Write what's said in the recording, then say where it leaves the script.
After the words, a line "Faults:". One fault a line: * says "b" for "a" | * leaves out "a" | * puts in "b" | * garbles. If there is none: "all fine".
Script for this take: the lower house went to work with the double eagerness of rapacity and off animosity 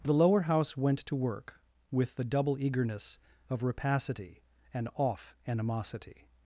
the lower house went to work with the double eagerness of rapacity and off animosity
Faults:
all fine